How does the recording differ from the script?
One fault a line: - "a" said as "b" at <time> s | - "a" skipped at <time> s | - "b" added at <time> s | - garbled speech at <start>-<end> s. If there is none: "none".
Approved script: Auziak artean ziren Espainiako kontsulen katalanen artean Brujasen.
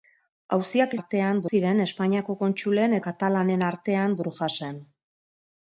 none